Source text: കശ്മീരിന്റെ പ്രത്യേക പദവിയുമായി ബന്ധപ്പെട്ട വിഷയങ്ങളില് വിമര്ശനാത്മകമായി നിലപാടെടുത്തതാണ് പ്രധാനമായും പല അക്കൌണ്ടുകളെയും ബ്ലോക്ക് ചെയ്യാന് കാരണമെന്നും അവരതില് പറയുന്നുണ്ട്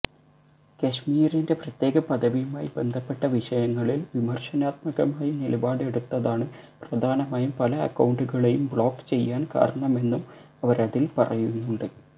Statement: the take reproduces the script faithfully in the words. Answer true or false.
true